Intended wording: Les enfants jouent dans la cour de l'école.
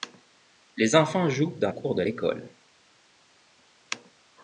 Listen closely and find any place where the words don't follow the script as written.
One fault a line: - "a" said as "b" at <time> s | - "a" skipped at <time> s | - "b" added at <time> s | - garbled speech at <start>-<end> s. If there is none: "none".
- "la" skipped at 1.7 s